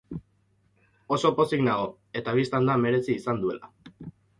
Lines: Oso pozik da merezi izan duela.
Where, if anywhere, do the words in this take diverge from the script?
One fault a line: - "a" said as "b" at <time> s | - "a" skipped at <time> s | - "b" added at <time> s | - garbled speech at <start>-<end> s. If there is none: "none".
- "nago eta bistan" added at 1.7 s